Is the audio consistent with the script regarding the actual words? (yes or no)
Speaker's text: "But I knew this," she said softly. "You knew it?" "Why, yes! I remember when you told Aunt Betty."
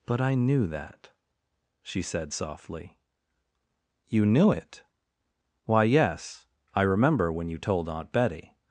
no